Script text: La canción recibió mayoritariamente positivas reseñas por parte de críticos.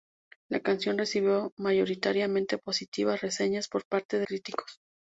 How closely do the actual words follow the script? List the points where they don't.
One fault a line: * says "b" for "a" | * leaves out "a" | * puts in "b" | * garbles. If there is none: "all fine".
all fine